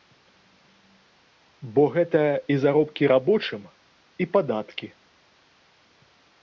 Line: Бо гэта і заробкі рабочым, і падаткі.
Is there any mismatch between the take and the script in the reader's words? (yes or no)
no